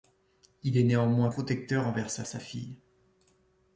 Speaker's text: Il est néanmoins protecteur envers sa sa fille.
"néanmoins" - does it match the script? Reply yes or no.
yes